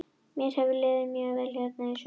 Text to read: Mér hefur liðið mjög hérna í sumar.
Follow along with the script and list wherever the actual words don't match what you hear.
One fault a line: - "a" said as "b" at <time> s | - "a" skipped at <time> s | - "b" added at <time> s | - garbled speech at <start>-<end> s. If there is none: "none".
- "vel" added at 1.4 s